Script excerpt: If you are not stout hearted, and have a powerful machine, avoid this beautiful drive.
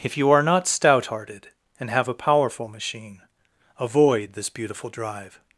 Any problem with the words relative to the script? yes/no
no